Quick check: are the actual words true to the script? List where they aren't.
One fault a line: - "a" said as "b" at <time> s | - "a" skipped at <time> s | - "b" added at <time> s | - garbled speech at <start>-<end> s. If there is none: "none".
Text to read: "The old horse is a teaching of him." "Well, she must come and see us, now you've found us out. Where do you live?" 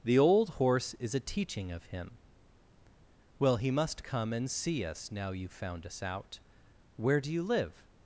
- "she" said as "he" at 3.6 s